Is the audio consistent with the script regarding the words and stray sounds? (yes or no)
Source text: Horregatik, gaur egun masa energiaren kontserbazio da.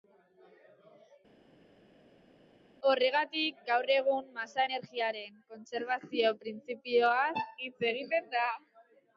no